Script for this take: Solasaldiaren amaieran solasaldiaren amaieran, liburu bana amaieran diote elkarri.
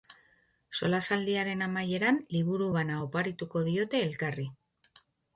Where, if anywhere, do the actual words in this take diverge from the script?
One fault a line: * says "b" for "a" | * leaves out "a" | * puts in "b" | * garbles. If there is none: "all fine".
* leaves out "solasaldiaren amaieran"
* says "oparituko" for "amaieran"